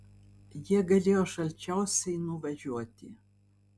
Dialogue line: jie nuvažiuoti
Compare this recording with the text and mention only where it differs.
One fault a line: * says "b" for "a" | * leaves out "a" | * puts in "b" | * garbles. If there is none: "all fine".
* puts in "galėjo šalčiausiai"